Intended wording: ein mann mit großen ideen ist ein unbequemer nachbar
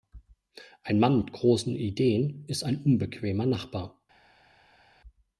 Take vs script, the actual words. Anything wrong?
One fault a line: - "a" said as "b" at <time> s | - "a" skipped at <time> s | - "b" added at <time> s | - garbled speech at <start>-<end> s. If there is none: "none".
none